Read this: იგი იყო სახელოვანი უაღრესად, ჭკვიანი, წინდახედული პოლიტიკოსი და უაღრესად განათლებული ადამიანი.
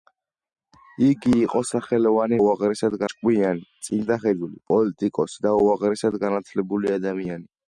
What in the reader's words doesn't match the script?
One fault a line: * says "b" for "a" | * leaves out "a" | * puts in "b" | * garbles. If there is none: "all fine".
all fine